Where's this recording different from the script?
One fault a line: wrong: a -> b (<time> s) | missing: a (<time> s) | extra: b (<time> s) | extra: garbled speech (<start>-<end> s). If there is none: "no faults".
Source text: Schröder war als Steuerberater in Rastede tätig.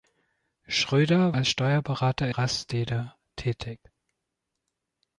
missing: war (1.4 s)
missing: in (2.3 s)